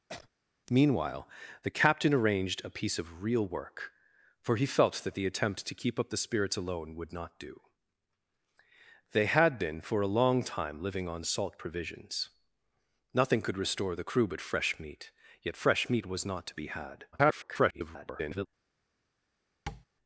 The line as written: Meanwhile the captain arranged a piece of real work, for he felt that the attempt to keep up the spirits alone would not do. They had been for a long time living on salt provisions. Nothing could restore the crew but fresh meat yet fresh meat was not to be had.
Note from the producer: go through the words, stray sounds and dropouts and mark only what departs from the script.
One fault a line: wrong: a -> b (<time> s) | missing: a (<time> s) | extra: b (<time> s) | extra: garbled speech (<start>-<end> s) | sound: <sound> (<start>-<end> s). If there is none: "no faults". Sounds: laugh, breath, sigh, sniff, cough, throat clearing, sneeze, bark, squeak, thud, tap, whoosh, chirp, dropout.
sound: sneeze (0.1-0.3 s)
extra: garbled speech (17.1-18.5 s)
sound: tap (19.7-19.9 s)